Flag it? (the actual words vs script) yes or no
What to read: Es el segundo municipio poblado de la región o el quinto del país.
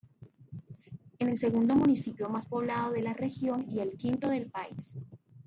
yes